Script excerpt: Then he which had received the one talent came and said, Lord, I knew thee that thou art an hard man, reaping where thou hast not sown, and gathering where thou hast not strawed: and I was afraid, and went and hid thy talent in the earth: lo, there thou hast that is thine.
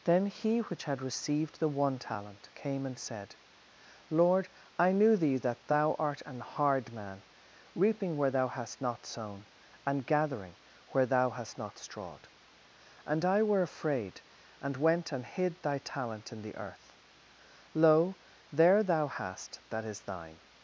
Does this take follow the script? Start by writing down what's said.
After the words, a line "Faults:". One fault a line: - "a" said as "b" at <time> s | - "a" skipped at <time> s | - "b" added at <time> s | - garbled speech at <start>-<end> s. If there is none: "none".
Then he which had received the one talent came and said, Lord, I knew thee that thou art an hard man, reaping where thou hast not sown, and gathering where thou hast not strawed: and I were afraid, and went and hid thy talent in the earth: lo, there thou hast that is thine.
Faults:
- "was" said as "were" at 13.4 s